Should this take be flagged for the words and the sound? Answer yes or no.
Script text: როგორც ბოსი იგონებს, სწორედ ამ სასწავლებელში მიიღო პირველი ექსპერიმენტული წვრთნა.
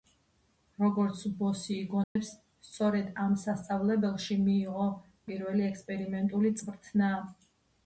yes